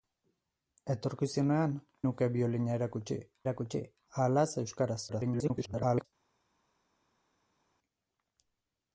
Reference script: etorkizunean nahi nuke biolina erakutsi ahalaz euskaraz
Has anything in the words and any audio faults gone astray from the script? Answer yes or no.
yes